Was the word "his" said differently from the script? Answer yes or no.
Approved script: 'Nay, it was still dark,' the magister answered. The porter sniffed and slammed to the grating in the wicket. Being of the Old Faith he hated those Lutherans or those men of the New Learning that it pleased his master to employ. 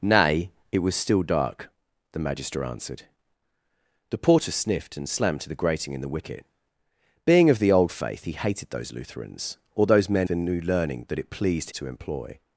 yes